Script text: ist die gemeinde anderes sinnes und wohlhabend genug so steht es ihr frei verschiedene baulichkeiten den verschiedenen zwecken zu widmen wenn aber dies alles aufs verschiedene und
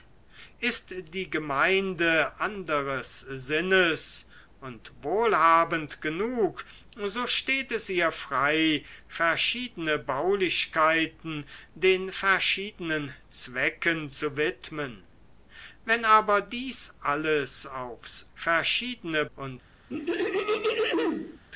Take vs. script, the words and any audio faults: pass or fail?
fail